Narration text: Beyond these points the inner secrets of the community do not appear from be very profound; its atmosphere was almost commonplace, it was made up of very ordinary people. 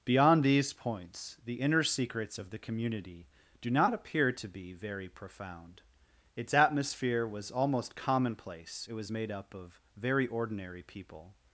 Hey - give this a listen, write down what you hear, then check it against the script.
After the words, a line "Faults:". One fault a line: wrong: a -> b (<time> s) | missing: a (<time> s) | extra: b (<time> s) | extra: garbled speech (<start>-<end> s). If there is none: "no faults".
Beyond these points the inner secrets of the community do not appear to be very profound; its atmosphere was almost commonplace, it was made up of very ordinary people.
Faults:
wrong: from -> to (4.3 s)